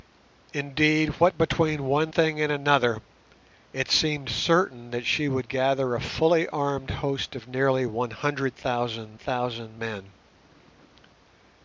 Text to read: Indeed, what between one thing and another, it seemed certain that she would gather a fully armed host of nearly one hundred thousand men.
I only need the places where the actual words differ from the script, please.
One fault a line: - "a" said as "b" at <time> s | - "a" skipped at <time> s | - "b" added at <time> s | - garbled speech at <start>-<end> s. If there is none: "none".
- "thousand" added at 9.2 s